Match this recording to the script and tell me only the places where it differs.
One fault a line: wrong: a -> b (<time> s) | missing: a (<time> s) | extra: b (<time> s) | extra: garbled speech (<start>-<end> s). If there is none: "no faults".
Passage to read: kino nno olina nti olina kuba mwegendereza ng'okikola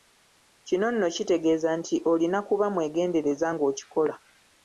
wrong: olina -> kitegeeza (1.1 s)